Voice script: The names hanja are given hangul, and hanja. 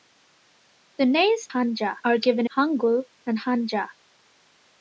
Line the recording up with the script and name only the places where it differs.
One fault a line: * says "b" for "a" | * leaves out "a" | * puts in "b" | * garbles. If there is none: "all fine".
all fine